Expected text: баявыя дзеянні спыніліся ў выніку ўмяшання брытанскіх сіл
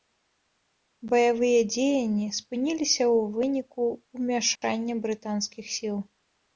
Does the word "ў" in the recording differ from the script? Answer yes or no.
no